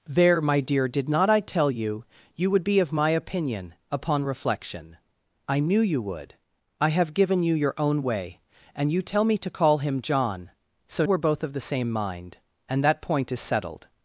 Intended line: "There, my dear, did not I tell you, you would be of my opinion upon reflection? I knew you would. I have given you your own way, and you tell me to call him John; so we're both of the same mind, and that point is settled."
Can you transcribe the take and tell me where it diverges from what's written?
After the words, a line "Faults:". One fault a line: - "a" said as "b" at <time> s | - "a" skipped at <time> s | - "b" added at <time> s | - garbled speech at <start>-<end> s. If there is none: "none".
"There, my dear, did not I tell you, you would be of my opinion upon reflection? I knew you would. I have given you your own way, and you tell me to call him John; so we're both of the same mind, and that point is settled."
Faults:
none